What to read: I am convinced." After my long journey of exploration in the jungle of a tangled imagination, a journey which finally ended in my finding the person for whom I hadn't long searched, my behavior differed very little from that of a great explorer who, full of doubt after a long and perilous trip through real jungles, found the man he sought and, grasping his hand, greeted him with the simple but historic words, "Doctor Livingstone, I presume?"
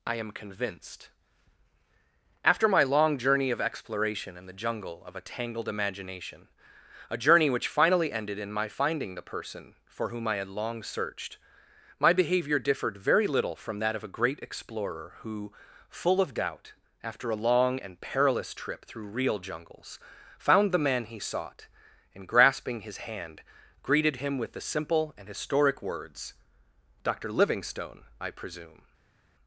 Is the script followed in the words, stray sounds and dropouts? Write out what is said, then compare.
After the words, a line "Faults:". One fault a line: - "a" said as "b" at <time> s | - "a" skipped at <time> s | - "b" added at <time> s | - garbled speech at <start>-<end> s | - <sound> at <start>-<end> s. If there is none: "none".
I am convinced." After my long journey of exploration in the jungle of a tangled imagination, a journey which finally ended in my finding the person for whom I had long searched, my behavior differed very little from that of a great explorer who, full of doubt after a long and perilous trip through real jungles, found the man he sought and, grasping his hand, greeted him with the simple and historic words, "Doctor Livingstone, I presume?"
Faults:
- "hadn't" said as "had" at 10.4 s
- "but" said as "and" at 25.1 s